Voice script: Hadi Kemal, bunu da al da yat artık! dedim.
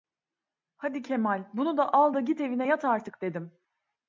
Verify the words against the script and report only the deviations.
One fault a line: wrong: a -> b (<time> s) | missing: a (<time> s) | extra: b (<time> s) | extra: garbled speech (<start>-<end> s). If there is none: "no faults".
extra: git evine (2.2 s)